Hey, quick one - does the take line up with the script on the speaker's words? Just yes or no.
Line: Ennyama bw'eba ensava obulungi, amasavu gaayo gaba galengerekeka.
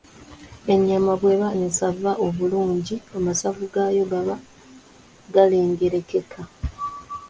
yes